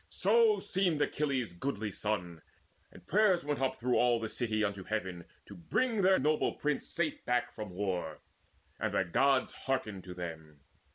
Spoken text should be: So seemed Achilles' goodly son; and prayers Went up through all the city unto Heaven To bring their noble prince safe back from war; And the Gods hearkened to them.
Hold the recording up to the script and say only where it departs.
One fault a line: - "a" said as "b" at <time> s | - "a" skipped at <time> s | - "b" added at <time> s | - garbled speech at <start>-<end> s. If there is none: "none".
none